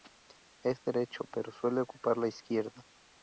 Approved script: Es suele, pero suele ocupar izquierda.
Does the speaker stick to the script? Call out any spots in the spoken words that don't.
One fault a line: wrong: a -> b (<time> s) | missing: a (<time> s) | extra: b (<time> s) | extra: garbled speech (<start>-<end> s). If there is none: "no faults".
wrong: suele -> derecho (0.8 s)
extra: la (2.2 s)